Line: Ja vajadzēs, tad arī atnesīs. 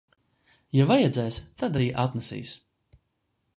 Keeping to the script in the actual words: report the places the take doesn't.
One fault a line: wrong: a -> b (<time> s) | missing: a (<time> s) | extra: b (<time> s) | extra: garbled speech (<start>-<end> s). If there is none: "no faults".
no faults